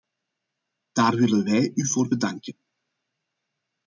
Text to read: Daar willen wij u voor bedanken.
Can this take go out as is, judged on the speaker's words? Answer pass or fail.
pass